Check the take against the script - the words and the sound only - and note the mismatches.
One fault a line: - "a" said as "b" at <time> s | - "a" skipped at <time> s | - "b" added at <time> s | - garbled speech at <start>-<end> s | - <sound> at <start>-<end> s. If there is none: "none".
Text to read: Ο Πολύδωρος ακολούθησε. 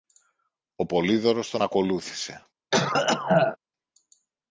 - "τον" added at 1.5 s
- cough at 2.7-3.6 s